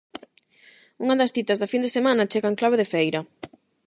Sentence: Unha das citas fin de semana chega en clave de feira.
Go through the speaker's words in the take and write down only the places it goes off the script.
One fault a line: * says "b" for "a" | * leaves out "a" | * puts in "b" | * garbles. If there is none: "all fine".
* puts in "da"